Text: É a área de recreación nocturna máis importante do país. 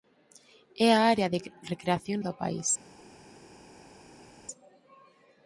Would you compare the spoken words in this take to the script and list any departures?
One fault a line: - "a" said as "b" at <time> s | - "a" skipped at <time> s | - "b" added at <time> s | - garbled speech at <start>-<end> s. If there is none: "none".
- "nocturna máis importante" skipped at 2.2 s